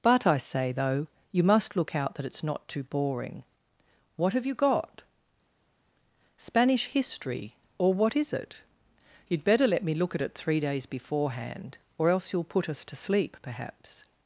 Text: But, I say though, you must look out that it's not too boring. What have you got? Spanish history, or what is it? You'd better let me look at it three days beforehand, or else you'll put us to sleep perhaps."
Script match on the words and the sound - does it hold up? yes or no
yes